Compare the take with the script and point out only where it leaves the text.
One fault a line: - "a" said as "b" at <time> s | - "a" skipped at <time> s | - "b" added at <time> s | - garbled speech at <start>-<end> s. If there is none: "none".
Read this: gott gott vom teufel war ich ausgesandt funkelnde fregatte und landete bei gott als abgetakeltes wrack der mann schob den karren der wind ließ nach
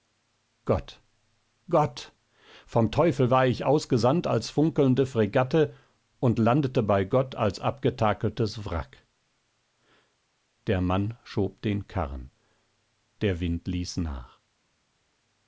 - "als" added at 4.2 s